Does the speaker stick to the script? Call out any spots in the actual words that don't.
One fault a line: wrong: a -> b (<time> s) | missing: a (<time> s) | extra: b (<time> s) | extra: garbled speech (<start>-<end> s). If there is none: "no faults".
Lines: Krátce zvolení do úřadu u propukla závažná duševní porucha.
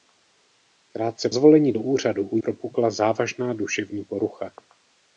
no faults